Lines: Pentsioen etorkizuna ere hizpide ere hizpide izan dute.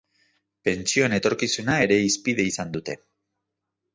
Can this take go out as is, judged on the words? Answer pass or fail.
fail